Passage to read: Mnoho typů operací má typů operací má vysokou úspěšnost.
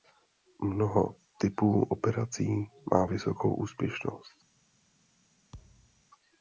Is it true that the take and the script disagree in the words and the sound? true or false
true